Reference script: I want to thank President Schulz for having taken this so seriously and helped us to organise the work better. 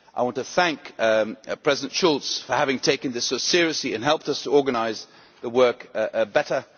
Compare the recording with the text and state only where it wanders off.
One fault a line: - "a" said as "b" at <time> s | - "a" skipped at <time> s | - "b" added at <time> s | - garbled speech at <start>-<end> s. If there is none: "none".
none